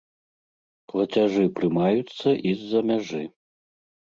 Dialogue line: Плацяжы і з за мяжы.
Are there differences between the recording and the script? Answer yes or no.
yes